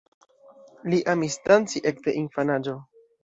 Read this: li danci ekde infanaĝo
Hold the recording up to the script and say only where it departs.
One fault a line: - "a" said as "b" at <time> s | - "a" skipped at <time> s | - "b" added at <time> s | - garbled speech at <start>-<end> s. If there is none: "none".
- "amis" added at 1.1 s